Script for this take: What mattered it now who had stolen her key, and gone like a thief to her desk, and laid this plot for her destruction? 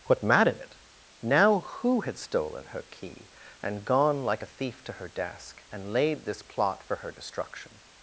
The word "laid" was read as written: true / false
true